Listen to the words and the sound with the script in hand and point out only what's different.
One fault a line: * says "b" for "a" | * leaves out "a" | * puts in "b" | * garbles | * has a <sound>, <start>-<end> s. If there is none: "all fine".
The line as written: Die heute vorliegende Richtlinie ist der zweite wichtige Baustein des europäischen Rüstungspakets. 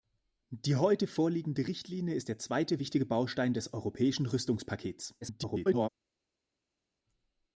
* garbles